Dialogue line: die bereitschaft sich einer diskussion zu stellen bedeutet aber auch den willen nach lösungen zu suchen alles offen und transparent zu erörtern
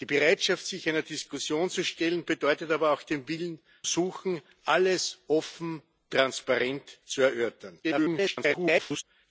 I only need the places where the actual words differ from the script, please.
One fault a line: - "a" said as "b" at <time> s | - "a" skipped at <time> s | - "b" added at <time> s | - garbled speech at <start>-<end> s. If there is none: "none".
- "nach lösungen zu" skipped at 3.6 s
- "und" skipped at 5.8 s
- garbled speech at 7.8-9.0 s